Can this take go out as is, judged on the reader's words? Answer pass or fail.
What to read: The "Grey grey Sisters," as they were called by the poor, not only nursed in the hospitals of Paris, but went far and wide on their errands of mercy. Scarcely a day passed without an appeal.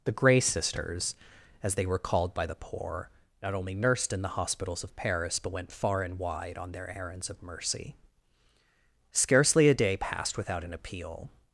fail